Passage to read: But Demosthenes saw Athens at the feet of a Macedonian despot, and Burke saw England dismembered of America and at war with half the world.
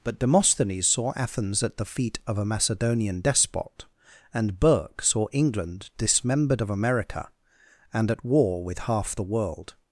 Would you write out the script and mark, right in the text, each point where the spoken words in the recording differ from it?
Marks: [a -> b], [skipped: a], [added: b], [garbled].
But Demosthenes saw Athens at the feet of a Macedonian despot, and Burke saw England dismembered of America and at war with half the world.